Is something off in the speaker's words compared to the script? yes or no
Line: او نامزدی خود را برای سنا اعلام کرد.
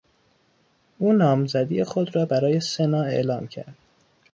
no